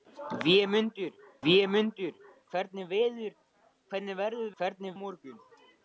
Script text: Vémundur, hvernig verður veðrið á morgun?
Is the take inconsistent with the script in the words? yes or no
yes